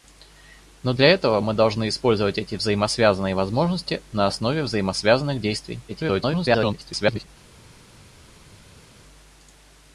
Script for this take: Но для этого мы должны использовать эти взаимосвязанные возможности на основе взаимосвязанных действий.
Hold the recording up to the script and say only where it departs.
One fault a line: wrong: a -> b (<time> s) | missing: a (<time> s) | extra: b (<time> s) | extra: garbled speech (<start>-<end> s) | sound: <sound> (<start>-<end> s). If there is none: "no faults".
extra: garbled speech (5.9-7.3 s)